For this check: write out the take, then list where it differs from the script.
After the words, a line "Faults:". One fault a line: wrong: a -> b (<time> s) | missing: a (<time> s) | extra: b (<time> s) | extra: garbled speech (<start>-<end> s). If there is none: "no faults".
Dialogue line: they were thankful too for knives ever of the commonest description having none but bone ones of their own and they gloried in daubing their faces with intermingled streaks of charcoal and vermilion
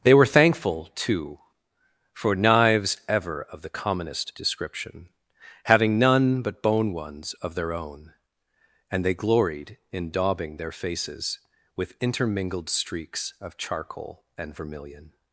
they were thankful too for knives ever of the commonest description having none but bone ones of their own and they gloried in daubing their faces with intermingled streaks of charcoal and vermilion
Faults:
no faults